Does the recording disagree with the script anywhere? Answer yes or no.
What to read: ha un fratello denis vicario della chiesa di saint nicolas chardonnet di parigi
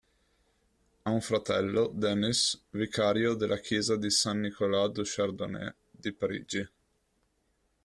yes